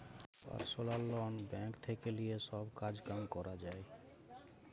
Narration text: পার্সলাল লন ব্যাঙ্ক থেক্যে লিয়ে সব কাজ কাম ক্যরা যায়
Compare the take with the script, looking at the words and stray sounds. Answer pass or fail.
pass